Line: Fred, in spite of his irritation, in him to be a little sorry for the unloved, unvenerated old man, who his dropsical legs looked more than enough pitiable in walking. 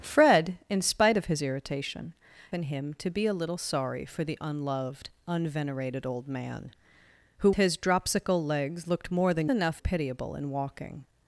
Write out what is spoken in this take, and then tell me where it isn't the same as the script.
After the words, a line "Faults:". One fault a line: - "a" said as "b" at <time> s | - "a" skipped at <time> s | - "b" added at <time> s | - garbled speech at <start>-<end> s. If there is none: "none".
Fred, in spite of his irritation, in him to be a little sorry for the unloved, unvenerated old man, who his dropsical legs looked more than enough pitiable in walking.
Faults:
none